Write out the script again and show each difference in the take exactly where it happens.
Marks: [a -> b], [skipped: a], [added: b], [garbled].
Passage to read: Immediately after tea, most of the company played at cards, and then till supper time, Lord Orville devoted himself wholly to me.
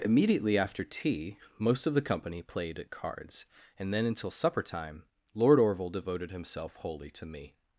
Immediately after tea, most of the company played at cards, and then [till -> until] supper time, Lord Orville devoted himself wholly to me.